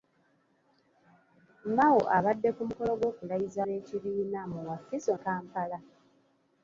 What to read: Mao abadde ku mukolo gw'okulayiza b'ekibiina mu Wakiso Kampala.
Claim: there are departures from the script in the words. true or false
false